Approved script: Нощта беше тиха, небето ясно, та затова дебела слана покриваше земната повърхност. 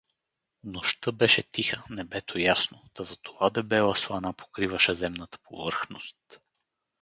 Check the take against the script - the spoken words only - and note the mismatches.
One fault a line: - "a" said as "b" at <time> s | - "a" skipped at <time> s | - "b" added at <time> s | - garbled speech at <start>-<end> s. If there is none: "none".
none